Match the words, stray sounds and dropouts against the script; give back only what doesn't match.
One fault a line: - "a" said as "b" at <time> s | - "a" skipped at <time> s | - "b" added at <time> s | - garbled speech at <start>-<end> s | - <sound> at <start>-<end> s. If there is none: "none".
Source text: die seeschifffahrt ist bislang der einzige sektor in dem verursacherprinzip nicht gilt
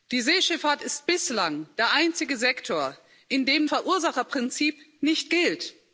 none